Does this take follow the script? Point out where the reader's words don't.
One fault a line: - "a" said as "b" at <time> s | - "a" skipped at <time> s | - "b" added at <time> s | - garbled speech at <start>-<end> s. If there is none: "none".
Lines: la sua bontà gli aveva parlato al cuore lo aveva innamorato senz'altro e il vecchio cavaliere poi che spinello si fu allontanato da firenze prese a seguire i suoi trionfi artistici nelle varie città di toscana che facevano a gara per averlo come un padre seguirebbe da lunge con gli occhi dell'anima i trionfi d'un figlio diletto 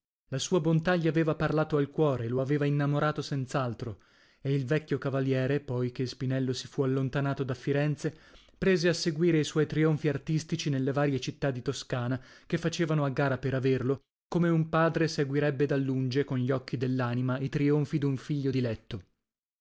none